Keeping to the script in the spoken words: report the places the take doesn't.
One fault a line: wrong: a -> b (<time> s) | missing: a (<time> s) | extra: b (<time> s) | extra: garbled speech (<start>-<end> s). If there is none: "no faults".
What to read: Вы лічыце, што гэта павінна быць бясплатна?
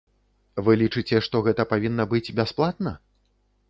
no faults